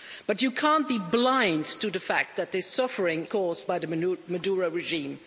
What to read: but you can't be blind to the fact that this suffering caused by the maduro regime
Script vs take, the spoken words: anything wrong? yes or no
no